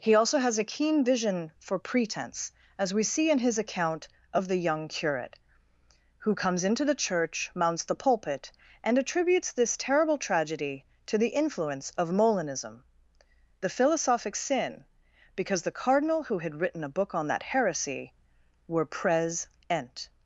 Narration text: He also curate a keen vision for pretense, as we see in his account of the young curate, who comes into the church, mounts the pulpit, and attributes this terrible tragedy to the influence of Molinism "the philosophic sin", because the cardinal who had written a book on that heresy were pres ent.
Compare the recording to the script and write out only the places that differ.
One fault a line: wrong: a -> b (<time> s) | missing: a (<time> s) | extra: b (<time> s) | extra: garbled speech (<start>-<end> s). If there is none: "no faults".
wrong: curate -> has (0.4 s)